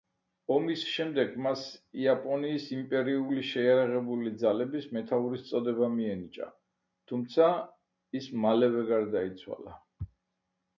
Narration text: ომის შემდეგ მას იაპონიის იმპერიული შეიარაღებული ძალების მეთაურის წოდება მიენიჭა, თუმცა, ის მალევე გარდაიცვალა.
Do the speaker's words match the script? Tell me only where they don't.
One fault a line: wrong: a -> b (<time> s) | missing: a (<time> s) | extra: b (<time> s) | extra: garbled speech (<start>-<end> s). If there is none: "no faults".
no faults